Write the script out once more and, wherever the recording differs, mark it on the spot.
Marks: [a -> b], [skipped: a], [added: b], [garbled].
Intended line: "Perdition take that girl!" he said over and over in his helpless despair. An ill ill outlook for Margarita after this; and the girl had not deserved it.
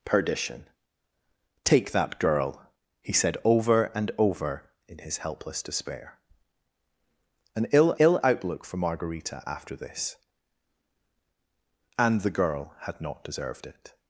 "Perdition take that girl!" he said over and over in his helpless despair. An ill ill outlook for Margarita after this; and the girl had not deserved it.